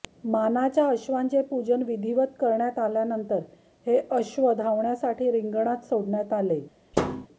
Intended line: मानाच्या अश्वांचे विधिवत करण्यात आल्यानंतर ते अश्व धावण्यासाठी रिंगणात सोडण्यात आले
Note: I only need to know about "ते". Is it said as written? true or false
false